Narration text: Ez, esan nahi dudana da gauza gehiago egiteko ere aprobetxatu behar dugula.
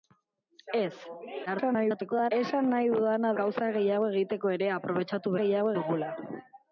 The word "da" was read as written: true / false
false